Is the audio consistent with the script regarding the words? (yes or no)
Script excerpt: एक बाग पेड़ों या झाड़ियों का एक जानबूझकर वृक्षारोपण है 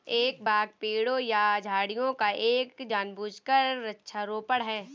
yes